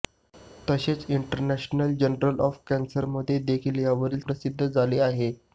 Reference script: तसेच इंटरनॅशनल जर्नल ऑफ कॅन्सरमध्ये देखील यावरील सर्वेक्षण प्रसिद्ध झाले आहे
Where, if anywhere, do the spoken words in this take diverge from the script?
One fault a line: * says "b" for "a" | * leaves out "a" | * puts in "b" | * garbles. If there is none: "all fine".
* leaves out "सर्वेक्षण"